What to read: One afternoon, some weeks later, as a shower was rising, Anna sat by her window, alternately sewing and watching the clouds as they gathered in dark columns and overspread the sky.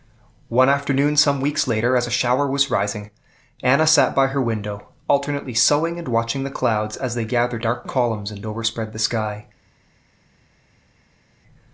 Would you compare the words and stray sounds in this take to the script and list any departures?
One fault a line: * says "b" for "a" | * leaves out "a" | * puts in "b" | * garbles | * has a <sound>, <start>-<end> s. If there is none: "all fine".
* leaves out "in"